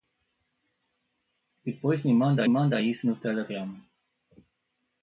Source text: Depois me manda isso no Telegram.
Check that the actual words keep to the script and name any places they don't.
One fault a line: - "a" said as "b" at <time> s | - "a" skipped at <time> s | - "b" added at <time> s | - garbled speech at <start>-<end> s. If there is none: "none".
- "manda" added at 2.5 s